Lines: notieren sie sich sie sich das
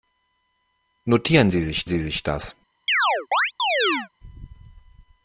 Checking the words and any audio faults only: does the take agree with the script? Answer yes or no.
no